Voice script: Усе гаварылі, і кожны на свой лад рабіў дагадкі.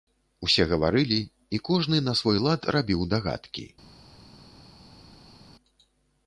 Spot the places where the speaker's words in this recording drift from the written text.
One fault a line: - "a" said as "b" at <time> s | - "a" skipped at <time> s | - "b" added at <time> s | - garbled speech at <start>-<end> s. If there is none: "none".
none